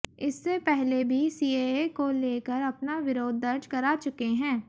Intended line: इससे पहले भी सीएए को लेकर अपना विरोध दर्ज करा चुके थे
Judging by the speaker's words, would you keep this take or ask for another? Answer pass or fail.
fail